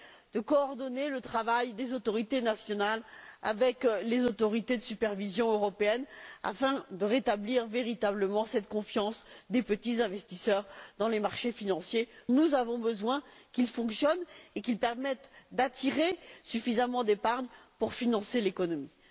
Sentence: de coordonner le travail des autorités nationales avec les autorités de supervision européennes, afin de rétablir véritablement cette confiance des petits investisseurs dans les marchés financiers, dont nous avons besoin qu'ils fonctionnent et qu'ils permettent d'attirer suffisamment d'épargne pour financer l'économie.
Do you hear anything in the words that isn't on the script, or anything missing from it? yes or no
yes